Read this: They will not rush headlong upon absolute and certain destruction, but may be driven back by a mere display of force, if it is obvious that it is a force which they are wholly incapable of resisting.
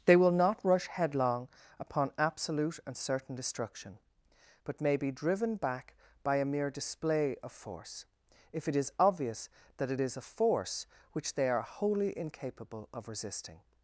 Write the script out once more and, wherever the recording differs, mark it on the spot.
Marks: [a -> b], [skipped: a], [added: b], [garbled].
They will not rush headlong upon absolute and certain destruction, but may be driven back by a mere display of force, if it is obvious that it is a force which they are wholly incapable of resisting.